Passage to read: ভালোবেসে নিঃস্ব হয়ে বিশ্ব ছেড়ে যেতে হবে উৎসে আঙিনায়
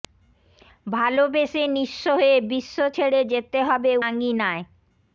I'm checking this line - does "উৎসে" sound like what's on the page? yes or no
no